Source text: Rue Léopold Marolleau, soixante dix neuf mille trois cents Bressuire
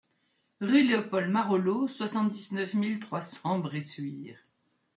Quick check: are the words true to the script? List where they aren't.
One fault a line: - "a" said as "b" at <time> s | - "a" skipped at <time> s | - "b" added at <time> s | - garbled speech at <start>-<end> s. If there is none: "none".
none